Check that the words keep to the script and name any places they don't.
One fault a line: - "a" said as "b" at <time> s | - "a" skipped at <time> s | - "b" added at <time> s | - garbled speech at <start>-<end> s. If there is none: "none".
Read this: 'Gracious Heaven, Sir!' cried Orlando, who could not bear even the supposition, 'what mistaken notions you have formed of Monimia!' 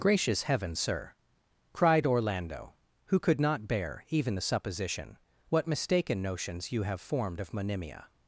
none